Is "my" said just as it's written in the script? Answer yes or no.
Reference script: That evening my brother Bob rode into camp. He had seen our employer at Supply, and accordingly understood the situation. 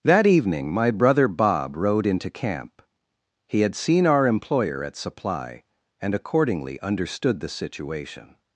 yes